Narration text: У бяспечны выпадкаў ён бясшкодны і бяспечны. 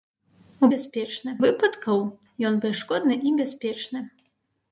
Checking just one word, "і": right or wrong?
right